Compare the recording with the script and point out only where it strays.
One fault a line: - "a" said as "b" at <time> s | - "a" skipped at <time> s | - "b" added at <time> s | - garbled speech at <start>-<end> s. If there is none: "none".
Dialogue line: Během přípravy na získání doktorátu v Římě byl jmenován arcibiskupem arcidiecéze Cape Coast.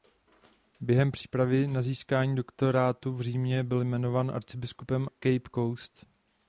- "arcidiecéze" skipped at 5.1 s